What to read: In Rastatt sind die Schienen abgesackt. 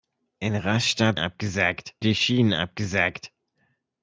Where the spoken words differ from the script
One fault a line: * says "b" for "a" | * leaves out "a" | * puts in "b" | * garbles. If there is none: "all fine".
* says "abgesackt" for "sind"